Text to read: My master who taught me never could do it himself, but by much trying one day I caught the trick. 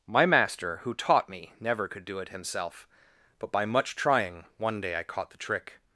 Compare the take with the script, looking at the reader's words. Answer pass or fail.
pass